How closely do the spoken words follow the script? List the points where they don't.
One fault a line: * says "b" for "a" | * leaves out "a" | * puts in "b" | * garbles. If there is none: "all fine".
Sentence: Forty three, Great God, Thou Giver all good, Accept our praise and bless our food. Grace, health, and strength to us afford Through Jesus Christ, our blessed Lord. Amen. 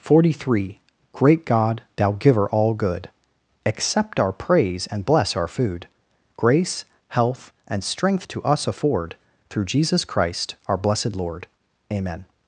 all fine